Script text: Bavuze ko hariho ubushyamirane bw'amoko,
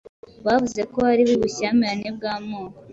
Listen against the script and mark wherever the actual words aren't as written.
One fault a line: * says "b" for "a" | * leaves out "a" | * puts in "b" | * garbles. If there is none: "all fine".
all fine